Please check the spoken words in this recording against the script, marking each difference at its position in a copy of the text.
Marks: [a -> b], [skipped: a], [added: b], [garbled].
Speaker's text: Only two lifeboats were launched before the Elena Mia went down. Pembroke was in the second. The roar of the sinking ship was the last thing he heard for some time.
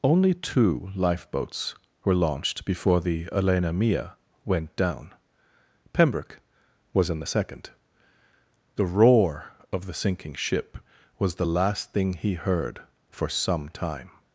Only two lifeboats were launched before the Elena Mia went down. Pembroke was in the second. The roar of the sinking ship was the last thing he heard for some time.